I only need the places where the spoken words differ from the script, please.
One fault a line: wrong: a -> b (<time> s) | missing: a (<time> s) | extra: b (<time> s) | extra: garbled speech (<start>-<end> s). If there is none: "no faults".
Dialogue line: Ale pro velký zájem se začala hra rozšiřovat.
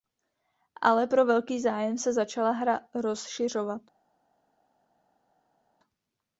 no faults